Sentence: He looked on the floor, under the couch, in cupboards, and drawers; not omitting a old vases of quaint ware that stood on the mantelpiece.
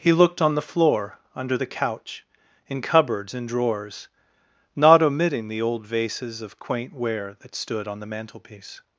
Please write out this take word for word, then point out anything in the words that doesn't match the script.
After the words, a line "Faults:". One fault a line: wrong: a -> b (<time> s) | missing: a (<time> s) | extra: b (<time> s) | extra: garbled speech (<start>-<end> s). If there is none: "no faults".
He looked on the floor, under the couch, in cupboards, and drawers; not omitting the old vases of quaint ware that stood on the mantelpiece.
Faults:
wrong: a -> the (5.5 s)